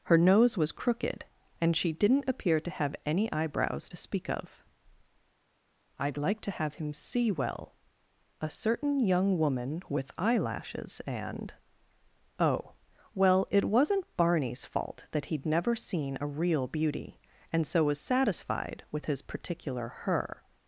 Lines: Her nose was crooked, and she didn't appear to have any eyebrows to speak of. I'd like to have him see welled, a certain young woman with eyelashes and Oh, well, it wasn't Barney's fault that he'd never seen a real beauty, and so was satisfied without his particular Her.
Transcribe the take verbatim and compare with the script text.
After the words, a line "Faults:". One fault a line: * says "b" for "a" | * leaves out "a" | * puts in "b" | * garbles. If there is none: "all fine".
Her nose was crooked, and she didn't appear to have any eyebrows to speak of. I'd like to have him see well, a certain young woman with eyelashes and Oh, well, it wasn't Barney's fault that he'd never seen a real beauty, and so was satisfied with his particular Her.
Faults:
* says "well" for "welled"
* says "with" for "without"